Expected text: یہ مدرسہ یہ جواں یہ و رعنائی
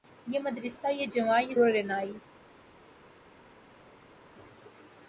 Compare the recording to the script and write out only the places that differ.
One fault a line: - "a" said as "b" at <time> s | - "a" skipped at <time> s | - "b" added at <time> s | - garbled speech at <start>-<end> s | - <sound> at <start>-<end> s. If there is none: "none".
none